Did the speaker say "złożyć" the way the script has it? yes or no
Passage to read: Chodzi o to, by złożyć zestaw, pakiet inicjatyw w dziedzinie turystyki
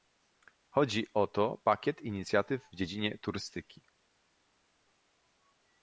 no